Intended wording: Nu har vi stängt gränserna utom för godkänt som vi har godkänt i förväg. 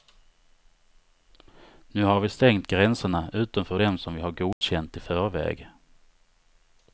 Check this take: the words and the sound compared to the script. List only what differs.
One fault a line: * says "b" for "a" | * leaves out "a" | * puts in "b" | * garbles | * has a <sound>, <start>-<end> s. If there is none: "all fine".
* says "dem" for "godkänt"
* has a dropout, 4.5-4.6 s